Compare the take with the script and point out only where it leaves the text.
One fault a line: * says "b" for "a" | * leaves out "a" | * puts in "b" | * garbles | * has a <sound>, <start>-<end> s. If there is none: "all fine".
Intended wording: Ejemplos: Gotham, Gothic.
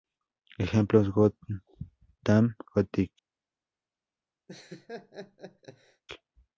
* has a laugh, 4.5-6.0 s